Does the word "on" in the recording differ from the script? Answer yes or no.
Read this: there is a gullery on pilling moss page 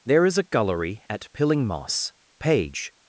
yes